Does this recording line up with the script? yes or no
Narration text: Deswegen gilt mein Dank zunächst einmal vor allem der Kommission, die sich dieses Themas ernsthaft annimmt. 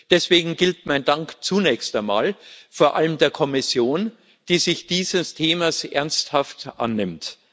yes